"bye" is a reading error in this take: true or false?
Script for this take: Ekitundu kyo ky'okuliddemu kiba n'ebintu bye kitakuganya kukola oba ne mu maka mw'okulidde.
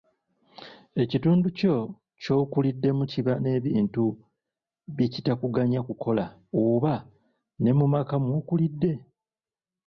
false